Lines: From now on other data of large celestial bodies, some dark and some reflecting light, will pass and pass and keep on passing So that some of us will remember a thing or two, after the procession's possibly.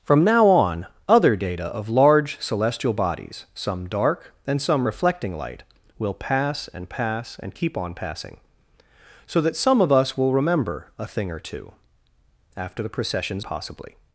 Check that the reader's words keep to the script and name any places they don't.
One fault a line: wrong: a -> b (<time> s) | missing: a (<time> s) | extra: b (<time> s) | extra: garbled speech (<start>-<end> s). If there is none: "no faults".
no faults